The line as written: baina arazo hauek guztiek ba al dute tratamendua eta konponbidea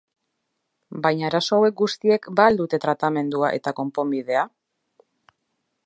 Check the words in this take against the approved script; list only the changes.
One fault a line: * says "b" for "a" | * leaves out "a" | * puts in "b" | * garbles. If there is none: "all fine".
all fine